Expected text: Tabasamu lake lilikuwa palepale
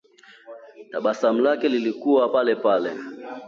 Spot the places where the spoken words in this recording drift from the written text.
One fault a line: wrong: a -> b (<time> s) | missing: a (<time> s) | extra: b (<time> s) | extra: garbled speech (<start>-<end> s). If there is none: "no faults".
no faults